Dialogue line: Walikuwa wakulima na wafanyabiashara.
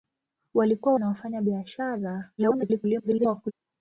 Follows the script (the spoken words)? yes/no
no